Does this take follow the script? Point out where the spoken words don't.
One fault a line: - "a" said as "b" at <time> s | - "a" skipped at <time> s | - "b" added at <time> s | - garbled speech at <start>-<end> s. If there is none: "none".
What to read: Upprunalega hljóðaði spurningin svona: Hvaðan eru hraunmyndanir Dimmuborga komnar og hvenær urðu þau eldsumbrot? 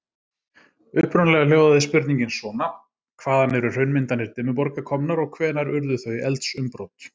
none